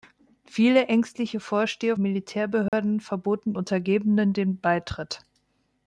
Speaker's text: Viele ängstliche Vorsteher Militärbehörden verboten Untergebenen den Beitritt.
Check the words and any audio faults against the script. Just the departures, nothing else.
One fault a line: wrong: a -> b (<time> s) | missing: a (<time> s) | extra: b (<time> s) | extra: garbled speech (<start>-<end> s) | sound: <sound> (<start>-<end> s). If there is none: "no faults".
sound: dropout (2.7-2.7 s)